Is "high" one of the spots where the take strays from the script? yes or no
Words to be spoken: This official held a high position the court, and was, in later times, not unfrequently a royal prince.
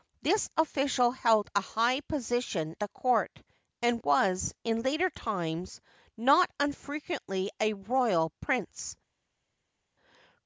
no